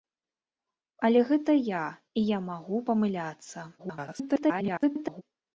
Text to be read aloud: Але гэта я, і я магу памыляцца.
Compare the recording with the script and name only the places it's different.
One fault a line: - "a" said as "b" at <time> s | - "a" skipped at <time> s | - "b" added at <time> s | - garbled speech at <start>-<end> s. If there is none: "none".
- garbled speech at 3.8-5.2 s